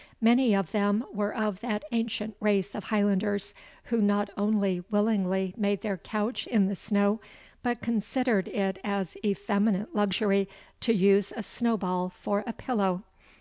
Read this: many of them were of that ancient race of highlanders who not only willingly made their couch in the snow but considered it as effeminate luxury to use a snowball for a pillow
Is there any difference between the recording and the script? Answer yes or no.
no